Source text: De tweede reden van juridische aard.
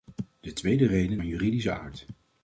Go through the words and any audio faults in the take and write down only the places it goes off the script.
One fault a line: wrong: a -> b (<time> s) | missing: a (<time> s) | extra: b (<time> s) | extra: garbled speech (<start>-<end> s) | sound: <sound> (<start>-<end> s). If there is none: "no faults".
no faults